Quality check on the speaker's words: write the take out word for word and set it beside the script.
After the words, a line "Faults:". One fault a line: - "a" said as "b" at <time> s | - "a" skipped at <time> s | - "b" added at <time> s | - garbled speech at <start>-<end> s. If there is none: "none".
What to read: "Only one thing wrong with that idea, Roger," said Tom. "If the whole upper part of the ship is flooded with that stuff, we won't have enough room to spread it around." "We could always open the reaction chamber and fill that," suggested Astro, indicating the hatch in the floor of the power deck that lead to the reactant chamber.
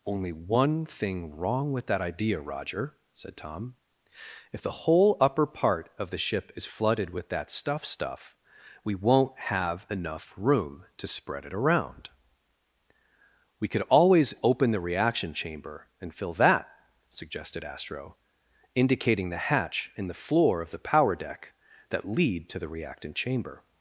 "Only one thing wrong with that idea, Roger," said Tom. "If the whole upper part of the ship is flooded with that stuff stuff, we won't have enough room to spread it around." "We could always open the reaction chamber and fill that," suggested Astro, indicating the hatch in the floor of the power deck that lead to the reactant chamber.
Faults:
- "stuff" added at 7.8 s